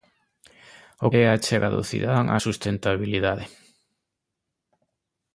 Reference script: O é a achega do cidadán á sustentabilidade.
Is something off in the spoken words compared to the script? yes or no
no